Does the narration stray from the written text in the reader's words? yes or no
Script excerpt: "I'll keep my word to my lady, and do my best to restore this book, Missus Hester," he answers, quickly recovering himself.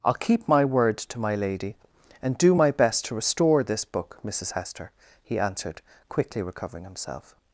yes